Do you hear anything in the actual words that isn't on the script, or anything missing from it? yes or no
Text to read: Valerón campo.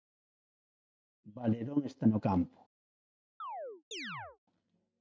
yes